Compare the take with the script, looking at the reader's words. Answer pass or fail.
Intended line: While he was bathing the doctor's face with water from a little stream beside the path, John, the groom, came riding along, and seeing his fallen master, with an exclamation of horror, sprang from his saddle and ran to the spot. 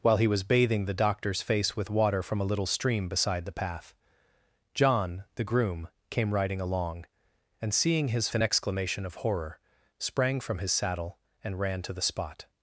fail